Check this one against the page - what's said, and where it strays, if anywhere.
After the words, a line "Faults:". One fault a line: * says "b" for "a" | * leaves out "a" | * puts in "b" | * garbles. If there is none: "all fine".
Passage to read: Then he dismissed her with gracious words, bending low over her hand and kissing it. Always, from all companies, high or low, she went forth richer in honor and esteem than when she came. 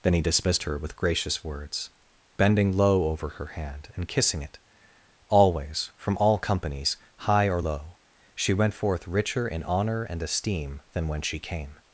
Then he dismissed her with gracious words, bending low over her hand and kissing it. Always, from all companies, high or low, she went forth richer in honor and esteem than when she came.
Faults:
all fine